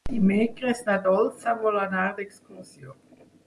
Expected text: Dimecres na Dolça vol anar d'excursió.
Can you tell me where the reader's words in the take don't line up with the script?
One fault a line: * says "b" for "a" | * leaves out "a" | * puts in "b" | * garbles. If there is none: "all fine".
all fine